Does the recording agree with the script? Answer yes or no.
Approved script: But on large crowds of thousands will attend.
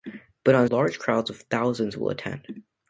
yes